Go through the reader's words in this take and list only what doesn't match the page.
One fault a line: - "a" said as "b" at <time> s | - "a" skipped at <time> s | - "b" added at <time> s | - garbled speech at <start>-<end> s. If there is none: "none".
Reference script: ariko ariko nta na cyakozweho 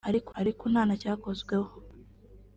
none